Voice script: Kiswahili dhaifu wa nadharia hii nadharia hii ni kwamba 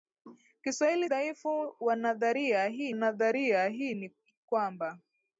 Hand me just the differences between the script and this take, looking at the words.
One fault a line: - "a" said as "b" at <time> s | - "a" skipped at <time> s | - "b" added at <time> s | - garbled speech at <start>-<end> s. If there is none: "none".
none